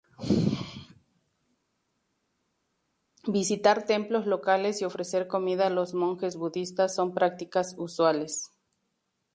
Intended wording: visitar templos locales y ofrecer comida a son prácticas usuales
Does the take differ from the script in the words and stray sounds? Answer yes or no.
yes